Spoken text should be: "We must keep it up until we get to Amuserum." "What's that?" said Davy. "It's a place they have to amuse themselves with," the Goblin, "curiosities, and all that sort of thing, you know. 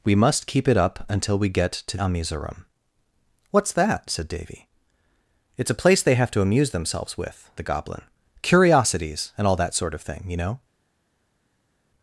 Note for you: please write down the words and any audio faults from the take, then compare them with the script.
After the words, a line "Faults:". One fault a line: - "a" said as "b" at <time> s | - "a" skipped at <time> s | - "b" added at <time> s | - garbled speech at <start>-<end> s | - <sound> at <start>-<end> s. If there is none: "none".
"We must keep it up until we get to Amuserum." "What's that?" said Davy. "It's a place they have to amuse themselves with," the Goblin, "curiosities, and all that sort of thing, you know.
Faults:
none